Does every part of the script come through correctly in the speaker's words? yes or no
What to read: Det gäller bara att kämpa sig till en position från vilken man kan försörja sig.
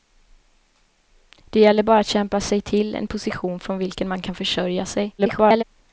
no